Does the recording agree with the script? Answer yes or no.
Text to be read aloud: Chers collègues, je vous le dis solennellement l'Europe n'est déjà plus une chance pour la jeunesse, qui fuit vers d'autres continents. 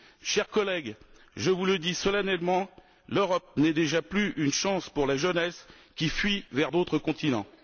yes